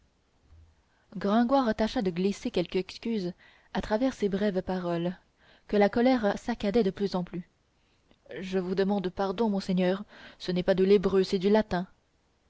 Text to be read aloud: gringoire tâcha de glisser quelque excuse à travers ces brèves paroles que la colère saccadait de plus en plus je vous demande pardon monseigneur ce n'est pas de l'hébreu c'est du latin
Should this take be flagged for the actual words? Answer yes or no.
no